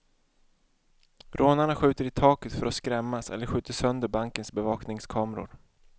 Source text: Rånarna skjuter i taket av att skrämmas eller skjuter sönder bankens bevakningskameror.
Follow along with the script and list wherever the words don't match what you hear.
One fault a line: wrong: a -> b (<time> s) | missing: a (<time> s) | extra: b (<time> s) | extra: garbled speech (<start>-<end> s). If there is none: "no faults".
wrong: av -> för (2.5 s)